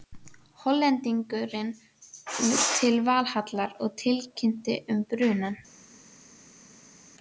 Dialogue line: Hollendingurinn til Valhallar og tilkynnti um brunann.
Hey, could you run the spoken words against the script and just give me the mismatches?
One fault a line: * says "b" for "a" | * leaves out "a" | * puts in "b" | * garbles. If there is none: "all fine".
all fine